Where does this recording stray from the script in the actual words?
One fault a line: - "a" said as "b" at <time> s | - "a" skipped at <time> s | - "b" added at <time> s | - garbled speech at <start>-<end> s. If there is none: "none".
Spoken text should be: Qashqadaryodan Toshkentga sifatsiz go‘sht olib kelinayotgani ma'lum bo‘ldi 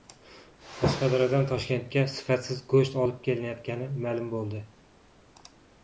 none